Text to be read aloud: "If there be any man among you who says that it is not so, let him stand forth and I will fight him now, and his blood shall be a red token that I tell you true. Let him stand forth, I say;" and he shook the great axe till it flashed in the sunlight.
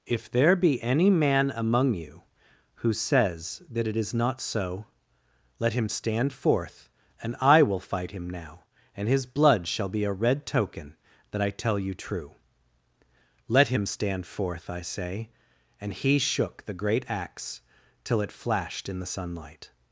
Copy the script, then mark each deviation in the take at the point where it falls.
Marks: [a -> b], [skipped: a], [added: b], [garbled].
"If there be any man among you who says that it is not so, let him stand forth and I will fight him now, and his blood shall be a red token that I tell you true. Let him stand forth, I say;" and he shook the great axe till it flashed in the sunlight.